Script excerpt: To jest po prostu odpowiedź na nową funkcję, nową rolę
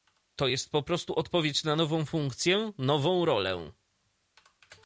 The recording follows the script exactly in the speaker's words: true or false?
true